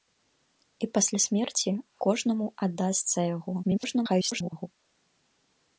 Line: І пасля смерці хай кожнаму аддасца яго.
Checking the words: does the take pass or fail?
fail